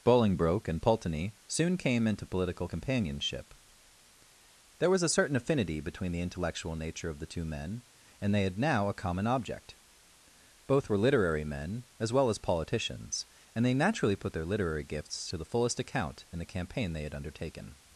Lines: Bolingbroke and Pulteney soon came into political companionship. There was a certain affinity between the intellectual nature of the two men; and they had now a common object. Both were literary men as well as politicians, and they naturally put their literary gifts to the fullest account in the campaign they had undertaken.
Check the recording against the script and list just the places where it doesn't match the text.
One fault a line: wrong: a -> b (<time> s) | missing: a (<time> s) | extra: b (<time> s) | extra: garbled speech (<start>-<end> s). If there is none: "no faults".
no faults